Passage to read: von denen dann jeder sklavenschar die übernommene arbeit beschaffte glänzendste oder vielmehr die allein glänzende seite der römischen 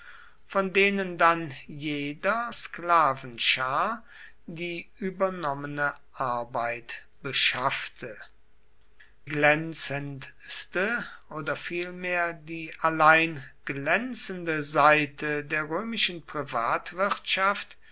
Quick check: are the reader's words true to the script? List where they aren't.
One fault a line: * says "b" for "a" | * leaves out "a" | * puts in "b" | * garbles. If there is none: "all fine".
all fine